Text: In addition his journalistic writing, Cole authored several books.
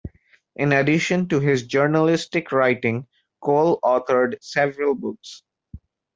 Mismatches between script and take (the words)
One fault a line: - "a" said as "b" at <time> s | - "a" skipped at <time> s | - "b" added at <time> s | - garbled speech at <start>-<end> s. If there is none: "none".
- "to" added at 1.3 s